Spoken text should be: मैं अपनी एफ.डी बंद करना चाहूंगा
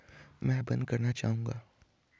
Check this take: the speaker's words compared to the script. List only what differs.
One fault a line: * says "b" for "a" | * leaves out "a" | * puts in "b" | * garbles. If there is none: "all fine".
* leaves out "अपनी एफ.डी"